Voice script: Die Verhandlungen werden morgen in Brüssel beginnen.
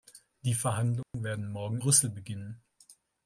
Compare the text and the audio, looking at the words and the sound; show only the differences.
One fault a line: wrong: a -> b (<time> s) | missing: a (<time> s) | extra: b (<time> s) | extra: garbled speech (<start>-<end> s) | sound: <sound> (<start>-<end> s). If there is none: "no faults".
sound: dropout (1.0-1.1 s)
missing: in (1.8 s)